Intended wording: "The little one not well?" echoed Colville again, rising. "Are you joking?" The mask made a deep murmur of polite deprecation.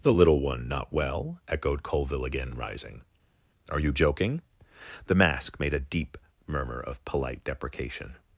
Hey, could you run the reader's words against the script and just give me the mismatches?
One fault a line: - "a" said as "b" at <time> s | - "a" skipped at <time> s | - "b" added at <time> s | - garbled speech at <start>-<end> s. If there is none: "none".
none